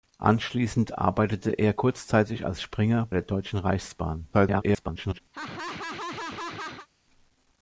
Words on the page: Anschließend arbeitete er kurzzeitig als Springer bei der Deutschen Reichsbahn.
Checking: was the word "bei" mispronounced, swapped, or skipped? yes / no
yes